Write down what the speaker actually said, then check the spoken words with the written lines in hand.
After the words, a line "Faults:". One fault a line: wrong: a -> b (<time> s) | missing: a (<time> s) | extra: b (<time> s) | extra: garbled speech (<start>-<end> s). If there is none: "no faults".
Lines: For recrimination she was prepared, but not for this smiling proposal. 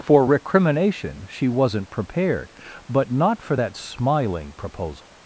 For recrimination she wasn't prepared, but not for that smiling proposal.
Faults:
wrong: was -> wasn't (1.5 s)
wrong: this -> that (3.6 s)